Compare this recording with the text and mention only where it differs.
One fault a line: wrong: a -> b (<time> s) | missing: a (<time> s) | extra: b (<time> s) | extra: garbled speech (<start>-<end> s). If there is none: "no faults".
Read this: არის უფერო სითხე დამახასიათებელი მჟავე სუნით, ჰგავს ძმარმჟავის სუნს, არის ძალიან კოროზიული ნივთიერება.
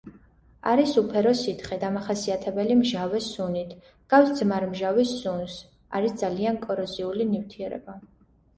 no faults